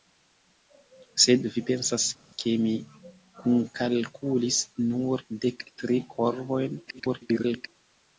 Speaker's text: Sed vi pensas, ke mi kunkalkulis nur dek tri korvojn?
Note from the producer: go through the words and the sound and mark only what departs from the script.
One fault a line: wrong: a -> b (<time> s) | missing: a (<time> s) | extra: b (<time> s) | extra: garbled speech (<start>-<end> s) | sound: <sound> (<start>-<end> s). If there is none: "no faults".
extra: garbled speech (6.9-7.7 s)